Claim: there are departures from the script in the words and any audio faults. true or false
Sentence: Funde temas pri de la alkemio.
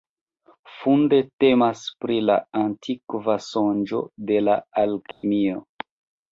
true